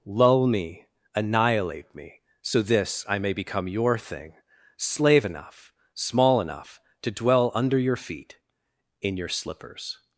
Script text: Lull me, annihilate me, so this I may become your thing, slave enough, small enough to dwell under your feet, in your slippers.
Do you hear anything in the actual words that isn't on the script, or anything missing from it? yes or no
no